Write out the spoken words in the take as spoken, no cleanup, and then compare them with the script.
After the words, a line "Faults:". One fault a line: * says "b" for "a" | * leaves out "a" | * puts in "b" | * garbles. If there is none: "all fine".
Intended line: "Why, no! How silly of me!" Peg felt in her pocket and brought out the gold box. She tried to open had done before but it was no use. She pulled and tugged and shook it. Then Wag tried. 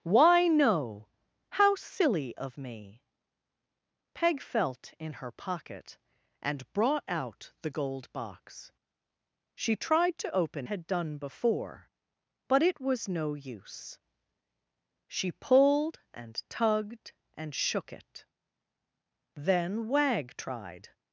"Why, no! How silly of me!" Peg felt in her pocket and brought out the gold box. She tried to open had done before but it was no use. She pulled and tugged and shook it. Then Wag tried.
Faults:
all fine